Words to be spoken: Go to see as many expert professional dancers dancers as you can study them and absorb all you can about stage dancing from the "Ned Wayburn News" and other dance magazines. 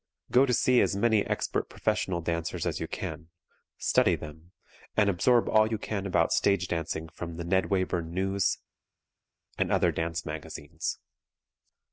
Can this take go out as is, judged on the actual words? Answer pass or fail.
fail